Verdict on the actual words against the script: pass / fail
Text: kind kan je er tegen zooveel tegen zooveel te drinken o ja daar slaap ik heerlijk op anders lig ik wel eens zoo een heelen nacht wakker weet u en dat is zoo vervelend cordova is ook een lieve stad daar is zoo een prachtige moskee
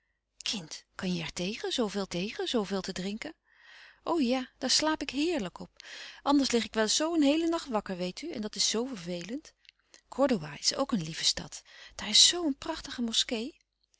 pass